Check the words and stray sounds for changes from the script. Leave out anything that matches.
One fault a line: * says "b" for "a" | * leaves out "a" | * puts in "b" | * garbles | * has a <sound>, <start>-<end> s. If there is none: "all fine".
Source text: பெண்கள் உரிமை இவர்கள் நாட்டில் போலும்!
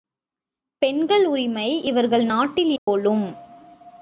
* has a dropout, 2.8-2.9 s